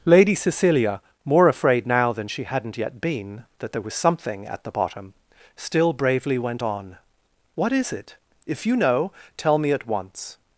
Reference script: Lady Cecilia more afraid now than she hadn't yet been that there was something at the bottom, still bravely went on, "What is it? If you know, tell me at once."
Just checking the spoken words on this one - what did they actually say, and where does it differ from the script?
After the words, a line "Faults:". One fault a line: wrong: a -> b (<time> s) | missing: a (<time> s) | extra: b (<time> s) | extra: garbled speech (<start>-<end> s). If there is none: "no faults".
Lady Cecilia more afraid now than she hadn't yet been that there was something at the bottom, still bravely went on, "What is it? If you know, tell me at once."
Faults:
no faults